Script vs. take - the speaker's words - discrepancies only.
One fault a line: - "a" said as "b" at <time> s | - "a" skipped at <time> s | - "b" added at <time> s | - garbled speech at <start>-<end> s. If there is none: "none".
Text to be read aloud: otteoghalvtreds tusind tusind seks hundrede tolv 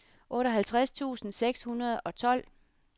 - "tusind" skipped at 1.3 s
- "og" added at 2.0 s